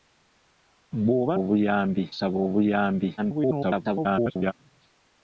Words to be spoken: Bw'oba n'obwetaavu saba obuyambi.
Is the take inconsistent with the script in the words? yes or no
yes